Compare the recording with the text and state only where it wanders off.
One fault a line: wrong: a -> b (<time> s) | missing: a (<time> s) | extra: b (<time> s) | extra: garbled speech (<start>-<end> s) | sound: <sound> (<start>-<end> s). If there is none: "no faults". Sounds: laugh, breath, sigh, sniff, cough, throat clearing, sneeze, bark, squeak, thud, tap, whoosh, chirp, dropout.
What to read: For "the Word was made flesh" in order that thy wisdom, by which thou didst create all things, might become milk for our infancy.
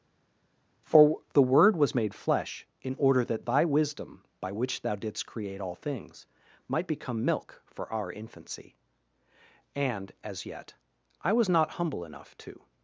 extra: And as yet I was not humble enough to (9.7 s)